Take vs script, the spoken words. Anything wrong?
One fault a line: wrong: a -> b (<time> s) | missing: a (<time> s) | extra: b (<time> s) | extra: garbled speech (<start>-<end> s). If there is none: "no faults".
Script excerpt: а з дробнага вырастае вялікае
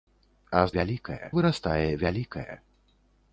wrong: дробнага -> вялікае (0.8 s)